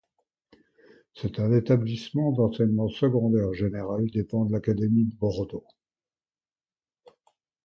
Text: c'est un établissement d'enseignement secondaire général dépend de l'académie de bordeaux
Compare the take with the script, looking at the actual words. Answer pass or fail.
pass